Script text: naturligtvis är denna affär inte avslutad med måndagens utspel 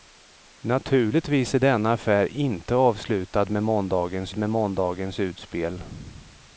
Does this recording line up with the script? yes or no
no